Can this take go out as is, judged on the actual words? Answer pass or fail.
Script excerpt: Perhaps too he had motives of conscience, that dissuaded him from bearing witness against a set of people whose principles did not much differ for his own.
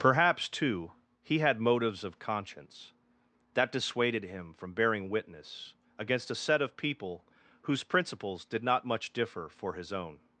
pass